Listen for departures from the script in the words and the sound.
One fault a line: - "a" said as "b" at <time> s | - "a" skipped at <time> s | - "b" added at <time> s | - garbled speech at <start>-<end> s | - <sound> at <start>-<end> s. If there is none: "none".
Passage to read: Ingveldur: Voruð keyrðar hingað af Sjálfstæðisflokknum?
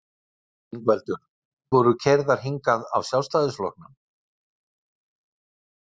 none